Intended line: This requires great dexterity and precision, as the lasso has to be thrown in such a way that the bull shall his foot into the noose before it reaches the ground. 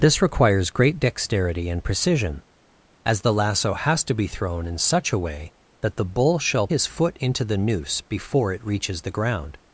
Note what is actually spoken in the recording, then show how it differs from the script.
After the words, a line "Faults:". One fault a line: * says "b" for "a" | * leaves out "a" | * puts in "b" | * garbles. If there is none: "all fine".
This requires great dexterity and precision, as the lasso has to be thrown in such a way that the bull shall his foot into the noose before it reaches the ground.
Faults:
all fine